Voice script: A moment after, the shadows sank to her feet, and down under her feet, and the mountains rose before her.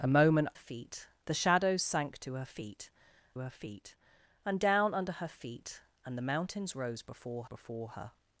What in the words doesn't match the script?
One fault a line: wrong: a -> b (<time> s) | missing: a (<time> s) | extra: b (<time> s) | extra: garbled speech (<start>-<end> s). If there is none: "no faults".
wrong: after -> feet (0.5 s)
extra: her feet (3.4 s)
extra: before (7.4 s)